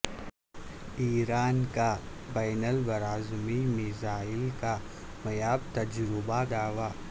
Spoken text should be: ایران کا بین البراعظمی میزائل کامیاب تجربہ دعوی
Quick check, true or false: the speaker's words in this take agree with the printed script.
true